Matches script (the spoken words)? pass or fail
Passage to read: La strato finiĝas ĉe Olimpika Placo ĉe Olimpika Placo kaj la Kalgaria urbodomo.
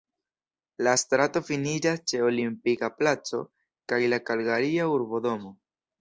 fail